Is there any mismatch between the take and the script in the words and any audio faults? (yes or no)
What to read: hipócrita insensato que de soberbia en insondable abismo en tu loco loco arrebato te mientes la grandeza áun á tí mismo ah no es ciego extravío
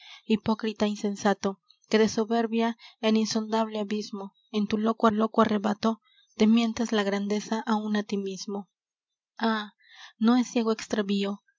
no